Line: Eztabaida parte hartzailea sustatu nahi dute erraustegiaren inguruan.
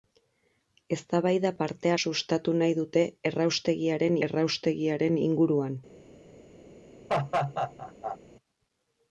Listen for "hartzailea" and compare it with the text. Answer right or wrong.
wrong